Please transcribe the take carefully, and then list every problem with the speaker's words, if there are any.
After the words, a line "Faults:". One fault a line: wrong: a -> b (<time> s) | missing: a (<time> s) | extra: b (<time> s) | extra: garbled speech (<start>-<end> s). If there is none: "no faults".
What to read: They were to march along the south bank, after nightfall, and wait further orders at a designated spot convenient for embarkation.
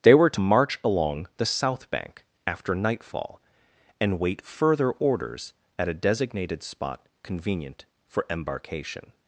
They were to march along the south bank, after nightfall, and wait further orders at a designated spot convenient for embarkation.
Faults:
no faults